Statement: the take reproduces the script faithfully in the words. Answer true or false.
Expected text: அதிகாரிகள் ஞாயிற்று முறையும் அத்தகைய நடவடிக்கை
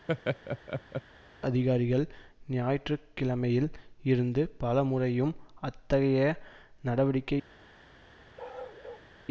false